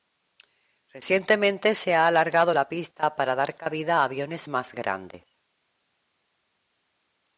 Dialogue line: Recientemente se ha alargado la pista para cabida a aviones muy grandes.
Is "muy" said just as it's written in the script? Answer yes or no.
no